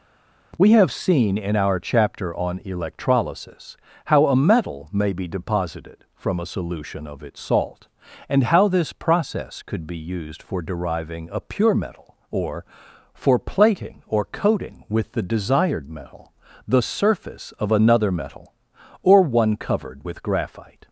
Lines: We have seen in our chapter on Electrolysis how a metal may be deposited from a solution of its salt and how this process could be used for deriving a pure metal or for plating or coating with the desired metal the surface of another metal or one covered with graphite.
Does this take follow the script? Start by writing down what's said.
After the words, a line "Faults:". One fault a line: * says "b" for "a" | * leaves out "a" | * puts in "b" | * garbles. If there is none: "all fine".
We have seen in our chapter on Electrolysis how a metal may be deposited from a solution of its salt and how this process could be used for deriving a pure metal or for plating or coating with the desired metal the surface of another metal or one covered with graphite.
Faults:
all fine